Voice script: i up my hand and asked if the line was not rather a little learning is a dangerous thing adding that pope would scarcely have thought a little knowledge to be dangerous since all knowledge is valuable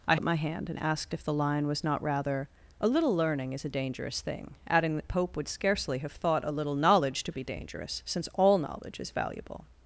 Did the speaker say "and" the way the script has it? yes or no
yes